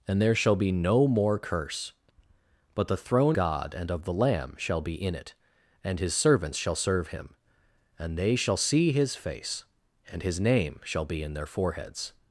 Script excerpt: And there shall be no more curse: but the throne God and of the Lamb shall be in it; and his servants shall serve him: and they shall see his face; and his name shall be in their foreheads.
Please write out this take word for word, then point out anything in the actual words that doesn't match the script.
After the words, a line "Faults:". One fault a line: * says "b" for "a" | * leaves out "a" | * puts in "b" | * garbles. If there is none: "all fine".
And there shall be no more curse: but the throne God and of the Lamb shall be in it; and his servants shall serve him: and they shall see his face; and his name shall be in their foreheads.
Faults:
all fine